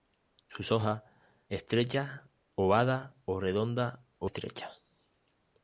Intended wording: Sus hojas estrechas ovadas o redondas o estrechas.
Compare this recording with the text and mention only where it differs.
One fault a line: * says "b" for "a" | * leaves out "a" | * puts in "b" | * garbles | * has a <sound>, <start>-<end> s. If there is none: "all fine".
all fine